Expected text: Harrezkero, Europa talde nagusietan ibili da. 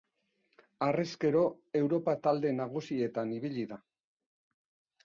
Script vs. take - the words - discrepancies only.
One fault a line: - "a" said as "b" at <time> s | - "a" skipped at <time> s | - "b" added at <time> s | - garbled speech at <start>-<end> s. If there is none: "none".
none